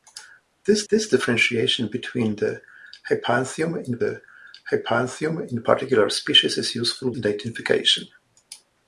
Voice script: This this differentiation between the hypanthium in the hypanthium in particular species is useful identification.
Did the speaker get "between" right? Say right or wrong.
right